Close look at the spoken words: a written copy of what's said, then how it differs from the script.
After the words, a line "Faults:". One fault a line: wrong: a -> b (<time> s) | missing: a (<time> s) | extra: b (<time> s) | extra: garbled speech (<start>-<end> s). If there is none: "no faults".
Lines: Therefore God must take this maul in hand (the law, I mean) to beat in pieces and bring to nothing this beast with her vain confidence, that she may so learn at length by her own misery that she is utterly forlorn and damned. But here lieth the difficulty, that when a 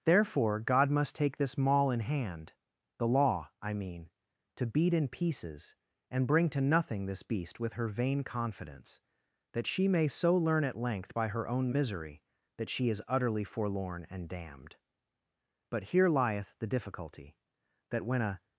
Therefore God must take this maul in hand (the law, I mean) to beat in pieces and bring to nothing this beast with her vain confidence, that she may so learn at length by her own misery that she is utterly forlorn and damned. But here lieth the difficulty, that when a
Faults:
no faults